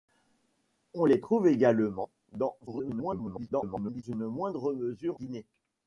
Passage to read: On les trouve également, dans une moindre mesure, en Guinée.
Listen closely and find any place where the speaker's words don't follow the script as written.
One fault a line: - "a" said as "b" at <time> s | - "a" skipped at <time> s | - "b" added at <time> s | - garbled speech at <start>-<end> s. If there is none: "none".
- garbled speech at 2.7-4.0 s
- "en" skipped at 5.2 s